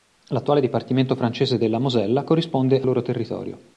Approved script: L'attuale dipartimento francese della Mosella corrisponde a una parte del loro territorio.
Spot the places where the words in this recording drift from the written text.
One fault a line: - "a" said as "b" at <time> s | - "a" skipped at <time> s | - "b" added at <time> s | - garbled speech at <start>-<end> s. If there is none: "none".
- "una parte del" skipped at 2.9 s